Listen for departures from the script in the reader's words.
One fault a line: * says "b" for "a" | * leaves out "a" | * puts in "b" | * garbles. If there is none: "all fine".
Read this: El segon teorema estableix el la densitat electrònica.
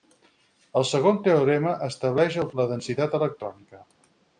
all fine